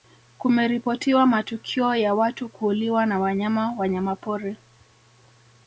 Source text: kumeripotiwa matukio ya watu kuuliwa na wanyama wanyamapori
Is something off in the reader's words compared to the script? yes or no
no